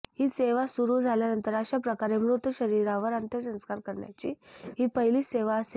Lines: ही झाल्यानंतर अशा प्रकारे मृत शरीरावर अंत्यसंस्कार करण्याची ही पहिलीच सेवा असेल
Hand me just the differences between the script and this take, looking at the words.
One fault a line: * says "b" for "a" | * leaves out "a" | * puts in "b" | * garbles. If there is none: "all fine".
* puts in "सेवा सुरू"